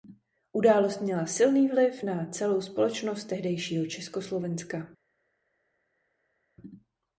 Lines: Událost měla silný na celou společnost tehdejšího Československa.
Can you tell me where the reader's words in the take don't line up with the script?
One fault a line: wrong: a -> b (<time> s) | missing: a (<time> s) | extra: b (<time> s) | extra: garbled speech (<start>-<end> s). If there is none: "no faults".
extra: vliv (1.7 s)